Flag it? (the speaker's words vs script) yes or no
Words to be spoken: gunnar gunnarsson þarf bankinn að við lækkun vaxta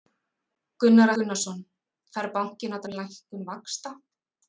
no